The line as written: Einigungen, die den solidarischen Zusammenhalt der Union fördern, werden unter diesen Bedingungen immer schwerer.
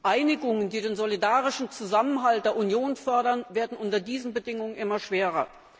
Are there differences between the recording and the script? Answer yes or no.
no